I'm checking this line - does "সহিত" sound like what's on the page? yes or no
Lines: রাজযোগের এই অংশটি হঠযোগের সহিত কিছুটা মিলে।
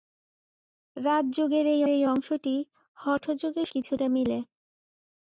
no